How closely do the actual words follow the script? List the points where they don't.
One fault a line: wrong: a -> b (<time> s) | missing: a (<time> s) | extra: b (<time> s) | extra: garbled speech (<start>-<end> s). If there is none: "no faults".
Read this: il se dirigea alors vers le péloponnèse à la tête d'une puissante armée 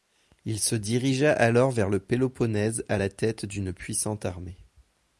no faults